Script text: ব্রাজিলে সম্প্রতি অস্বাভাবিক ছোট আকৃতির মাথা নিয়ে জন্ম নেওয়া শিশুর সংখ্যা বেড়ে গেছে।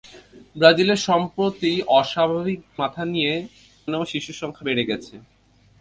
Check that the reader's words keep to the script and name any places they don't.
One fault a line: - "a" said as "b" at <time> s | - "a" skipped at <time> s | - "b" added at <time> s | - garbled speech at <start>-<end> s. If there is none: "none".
- "ছোট আকৃতির" skipped at 2.6 s
- "জন্ম" skipped at 3.3 s